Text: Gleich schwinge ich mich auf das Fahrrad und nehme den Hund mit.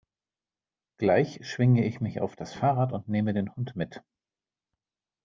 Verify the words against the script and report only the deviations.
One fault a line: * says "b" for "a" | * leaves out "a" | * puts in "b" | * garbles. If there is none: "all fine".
all fine